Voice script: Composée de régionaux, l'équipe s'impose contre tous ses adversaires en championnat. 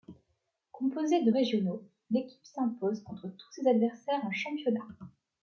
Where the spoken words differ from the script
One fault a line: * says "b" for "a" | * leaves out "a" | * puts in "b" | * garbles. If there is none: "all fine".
all fine